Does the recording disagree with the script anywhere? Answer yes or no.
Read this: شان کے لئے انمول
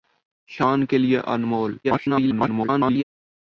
yes